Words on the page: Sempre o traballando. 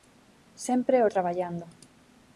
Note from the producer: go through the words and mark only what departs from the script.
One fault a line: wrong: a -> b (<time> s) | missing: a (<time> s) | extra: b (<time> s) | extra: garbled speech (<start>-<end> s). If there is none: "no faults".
no faults